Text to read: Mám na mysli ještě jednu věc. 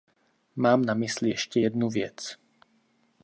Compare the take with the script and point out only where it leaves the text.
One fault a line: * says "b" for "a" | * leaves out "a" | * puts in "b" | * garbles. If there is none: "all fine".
all fine